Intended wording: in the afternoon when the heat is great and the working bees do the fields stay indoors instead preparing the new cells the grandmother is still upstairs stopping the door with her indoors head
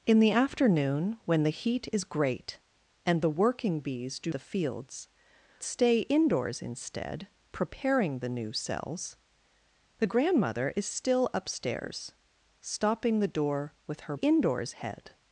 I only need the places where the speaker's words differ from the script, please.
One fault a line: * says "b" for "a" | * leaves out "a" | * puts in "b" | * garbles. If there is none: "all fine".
all fine